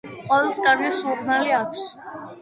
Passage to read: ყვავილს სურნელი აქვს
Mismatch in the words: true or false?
true